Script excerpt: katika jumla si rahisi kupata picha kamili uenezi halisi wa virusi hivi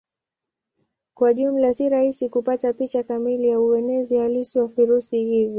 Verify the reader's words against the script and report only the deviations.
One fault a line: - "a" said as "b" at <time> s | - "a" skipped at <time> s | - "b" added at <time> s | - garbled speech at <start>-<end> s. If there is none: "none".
- "katika" said as "kwa" at 1.1 s
- "ya" added at 3.5 s